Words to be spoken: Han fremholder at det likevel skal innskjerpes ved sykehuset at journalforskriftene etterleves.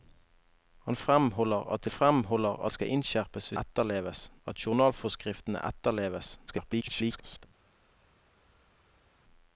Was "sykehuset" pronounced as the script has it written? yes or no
no